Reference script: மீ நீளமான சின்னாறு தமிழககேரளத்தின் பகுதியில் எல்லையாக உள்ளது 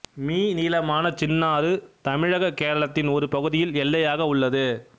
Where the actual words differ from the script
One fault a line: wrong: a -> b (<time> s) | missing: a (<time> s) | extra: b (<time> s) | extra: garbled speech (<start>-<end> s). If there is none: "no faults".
extra: ஒரு (3.1 s)